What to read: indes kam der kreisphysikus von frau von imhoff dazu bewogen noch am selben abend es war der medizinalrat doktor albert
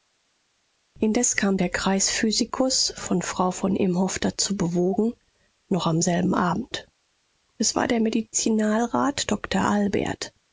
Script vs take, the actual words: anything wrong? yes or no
no